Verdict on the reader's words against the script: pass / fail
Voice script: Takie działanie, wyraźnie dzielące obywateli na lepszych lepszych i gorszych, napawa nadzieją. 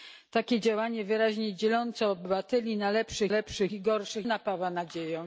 pass